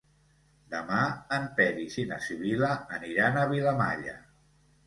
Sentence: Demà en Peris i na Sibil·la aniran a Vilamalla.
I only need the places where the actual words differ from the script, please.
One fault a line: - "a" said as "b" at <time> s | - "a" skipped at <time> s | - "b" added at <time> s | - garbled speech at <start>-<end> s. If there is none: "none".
none